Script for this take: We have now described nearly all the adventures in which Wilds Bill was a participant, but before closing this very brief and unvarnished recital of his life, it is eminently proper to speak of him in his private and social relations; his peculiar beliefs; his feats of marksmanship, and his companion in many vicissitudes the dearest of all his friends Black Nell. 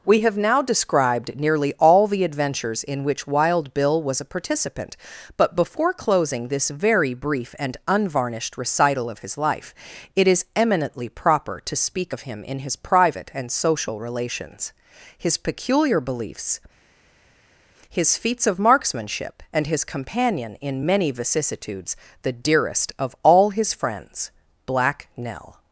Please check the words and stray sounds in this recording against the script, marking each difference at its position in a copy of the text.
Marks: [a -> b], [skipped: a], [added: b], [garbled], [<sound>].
We have now described nearly all the adventures in which [Wilds -> Wild] Bill was a participant, but before closing this very brief and unvarnished recital of his life, it is eminently proper to speak of him in his private and social relations; his peculiar beliefs; his feats of marksmanship, and his companion in many vicissitudes the dearest of all his friends Black Nell.